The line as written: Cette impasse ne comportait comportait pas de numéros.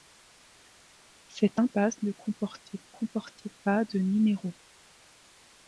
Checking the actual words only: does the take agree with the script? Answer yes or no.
yes